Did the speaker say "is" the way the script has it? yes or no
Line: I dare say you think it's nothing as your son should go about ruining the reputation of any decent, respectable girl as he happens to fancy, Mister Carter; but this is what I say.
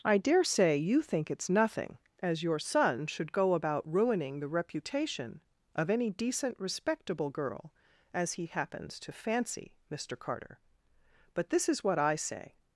yes